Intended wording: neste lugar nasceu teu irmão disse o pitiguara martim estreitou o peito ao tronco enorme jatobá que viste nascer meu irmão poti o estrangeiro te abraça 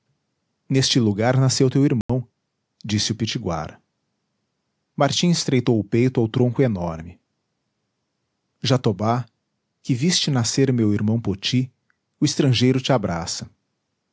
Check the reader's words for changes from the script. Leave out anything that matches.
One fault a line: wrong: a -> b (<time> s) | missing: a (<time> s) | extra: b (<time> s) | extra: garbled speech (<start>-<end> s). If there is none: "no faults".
no faults